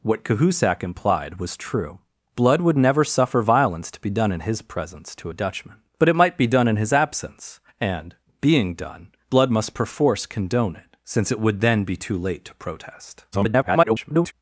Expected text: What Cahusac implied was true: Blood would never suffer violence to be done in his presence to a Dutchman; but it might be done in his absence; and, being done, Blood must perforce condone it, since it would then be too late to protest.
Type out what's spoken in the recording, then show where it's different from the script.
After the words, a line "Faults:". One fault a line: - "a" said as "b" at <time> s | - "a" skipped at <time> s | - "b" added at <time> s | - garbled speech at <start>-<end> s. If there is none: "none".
What Cahusac implied was true: Blood would never suffer violence to be done in his presence to a Dutchman; but it might be done in his absence; and, being done, Blood must perforce condone it, since it would then be too late to protest. [garbled]
Faults:
- garbled speech at 13.3-14.3 s